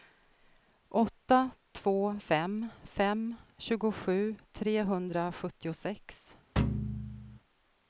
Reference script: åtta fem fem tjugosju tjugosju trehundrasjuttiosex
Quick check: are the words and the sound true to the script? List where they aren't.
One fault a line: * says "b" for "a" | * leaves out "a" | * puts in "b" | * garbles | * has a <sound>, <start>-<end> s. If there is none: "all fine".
* puts in "två"
* leaves out "tjugosju"
* has a thud, 6.6-7.4 s